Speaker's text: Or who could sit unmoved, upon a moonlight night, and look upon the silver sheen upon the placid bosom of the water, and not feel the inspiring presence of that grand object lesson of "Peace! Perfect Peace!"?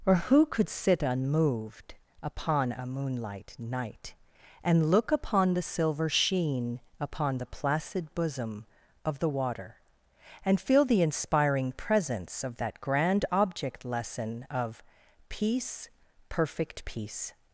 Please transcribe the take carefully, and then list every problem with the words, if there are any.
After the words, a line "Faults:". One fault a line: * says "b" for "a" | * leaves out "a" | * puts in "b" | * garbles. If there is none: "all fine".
Or who could sit unmoved, upon a moonlight night, and look upon the silver sheen upon the placid bosom of the water, and feel the inspiring presence of that grand object lesson of "Peace! Perfect Peace!"?
Faults:
* leaves out "not"